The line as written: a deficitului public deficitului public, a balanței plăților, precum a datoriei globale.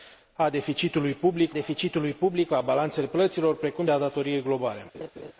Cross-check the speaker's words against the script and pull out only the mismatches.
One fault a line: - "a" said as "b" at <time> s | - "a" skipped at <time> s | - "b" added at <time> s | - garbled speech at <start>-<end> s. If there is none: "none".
none